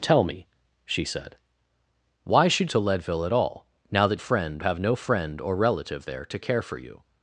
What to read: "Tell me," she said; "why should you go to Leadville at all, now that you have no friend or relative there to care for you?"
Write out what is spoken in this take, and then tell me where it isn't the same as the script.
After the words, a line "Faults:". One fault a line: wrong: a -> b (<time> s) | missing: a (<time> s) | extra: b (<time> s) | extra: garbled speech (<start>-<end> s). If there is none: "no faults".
"Tell me," she said; "why should to Leadville at all, now that friend have no friend or relative there to care for you?"
Faults:
missing: you go (2.7 s)
wrong: you -> friend (4.2 s)